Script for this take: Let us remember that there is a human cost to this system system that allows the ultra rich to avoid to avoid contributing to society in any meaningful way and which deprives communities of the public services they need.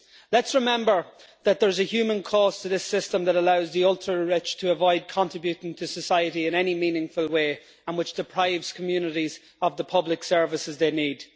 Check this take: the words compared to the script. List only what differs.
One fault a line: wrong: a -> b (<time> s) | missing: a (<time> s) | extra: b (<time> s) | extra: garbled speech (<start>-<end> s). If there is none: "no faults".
missing: system (3.2 s)
missing: to avoid (5.1 s)